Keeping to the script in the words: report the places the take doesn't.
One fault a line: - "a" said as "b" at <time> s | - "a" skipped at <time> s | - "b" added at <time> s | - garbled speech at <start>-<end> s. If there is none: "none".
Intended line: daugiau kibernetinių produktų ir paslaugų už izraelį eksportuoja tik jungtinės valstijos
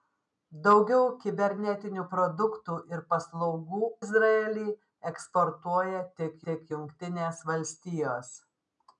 - "už" skipped at 3.9 s
- "tik" added at 6.5 s